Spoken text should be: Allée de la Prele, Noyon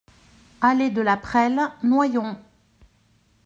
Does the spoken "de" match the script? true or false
true